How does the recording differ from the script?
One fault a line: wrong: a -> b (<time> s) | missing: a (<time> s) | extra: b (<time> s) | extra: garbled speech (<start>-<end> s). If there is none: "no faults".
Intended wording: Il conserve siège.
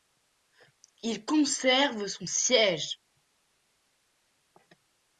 extra: son (2.1 s)